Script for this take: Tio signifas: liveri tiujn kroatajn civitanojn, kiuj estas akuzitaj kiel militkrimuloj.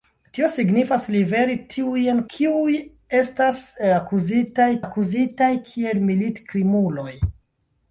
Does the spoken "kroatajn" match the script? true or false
false